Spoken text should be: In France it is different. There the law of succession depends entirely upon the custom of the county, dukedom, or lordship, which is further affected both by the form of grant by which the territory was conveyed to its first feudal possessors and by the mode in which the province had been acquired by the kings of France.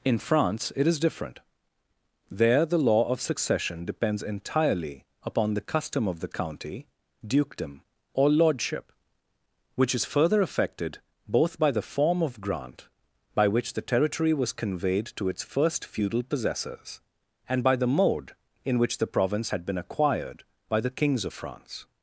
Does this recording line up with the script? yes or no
yes